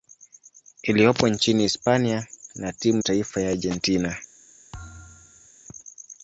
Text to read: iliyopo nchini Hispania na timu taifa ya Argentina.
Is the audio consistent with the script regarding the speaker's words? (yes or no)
yes